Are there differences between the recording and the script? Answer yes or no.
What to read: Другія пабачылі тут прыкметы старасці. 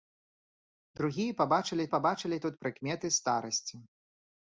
yes